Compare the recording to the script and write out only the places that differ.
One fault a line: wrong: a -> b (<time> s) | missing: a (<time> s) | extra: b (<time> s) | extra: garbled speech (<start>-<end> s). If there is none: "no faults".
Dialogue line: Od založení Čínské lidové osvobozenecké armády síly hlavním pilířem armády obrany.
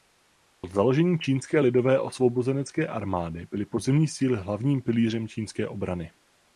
extra: byly pozemní (3.5 s)
wrong: armády -> čínské (5.3 s)